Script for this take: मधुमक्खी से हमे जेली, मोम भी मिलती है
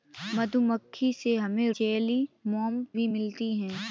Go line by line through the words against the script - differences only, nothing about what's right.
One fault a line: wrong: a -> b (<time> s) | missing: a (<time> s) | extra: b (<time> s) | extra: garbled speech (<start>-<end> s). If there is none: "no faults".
no faults